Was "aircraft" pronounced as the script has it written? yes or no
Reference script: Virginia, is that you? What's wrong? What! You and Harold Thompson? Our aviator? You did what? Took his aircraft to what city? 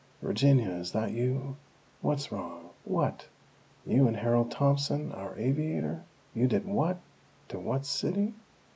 no